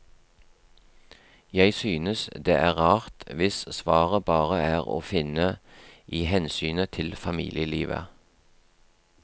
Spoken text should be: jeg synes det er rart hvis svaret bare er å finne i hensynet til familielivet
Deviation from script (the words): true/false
false